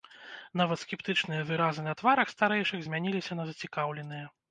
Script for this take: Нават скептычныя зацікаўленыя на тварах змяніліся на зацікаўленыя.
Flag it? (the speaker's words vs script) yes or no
yes